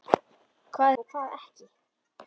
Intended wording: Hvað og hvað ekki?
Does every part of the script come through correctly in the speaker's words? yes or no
yes